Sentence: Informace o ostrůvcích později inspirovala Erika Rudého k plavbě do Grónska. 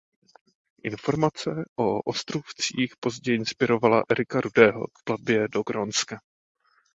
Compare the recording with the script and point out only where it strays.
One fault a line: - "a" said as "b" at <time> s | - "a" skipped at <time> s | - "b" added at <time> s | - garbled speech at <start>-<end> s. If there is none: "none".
none